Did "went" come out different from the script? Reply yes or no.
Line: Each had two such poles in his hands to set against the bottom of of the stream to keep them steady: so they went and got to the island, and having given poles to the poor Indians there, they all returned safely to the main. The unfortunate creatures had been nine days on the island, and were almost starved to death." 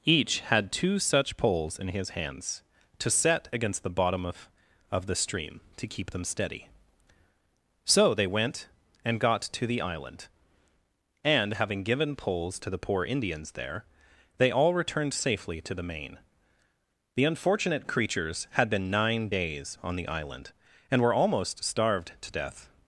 no